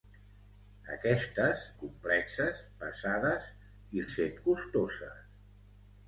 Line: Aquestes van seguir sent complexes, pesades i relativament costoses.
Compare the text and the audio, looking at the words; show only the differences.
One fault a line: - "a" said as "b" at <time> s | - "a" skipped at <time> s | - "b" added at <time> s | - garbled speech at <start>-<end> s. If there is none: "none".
- "van seguir sent" skipped at 1.6 s
- "relativament" said as "sent" at 4.1 s